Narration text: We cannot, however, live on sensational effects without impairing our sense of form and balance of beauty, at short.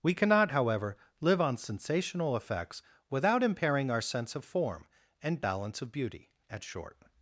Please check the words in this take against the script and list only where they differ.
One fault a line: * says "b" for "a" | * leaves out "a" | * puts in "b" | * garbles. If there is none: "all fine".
all fine